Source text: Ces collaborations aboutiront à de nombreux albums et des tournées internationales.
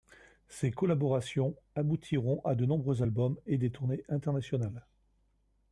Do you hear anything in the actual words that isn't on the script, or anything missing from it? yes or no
no